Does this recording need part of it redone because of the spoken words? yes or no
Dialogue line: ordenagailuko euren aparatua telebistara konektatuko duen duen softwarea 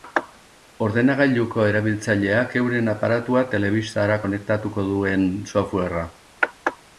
yes